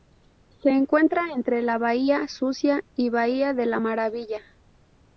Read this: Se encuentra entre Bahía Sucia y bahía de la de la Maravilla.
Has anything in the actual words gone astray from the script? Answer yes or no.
yes